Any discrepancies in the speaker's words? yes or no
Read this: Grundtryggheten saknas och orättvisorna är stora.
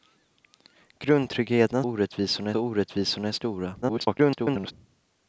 yes